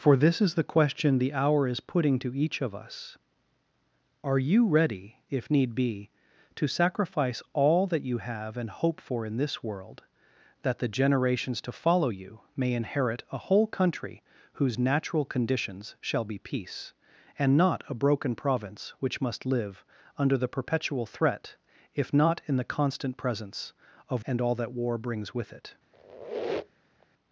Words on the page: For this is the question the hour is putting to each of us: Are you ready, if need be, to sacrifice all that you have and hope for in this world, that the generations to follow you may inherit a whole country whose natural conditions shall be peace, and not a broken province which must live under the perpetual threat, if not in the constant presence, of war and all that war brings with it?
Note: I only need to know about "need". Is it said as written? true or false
true